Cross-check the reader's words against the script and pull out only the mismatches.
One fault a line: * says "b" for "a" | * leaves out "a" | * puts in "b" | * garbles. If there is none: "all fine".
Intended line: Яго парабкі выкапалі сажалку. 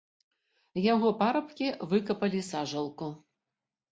all fine